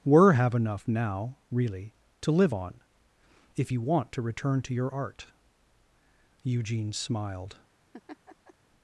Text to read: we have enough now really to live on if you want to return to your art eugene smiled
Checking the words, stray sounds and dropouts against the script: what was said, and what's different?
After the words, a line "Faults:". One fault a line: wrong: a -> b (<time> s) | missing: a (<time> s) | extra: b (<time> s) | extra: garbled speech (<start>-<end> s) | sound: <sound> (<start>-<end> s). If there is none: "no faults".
were have enough now really to live on if you want to return to your art eugene smiled
Faults:
wrong: we -> were (0.0 s)
sound: laugh (7.9-8.5 s)